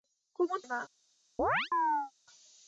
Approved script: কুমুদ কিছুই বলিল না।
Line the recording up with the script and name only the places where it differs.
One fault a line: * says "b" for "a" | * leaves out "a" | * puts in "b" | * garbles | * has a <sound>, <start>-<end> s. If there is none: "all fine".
* leaves out "কিছুই বলিল"
* has a chirp, 1.4-2.1 s